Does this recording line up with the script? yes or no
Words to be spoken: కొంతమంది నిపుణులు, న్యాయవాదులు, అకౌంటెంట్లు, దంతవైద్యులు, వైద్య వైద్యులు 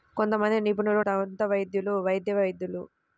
no